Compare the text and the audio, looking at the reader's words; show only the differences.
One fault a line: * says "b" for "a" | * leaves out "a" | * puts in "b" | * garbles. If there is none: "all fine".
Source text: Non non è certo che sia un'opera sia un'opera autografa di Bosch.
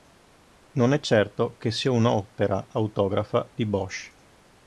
* leaves out "non"
* leaves out "sia un'opera"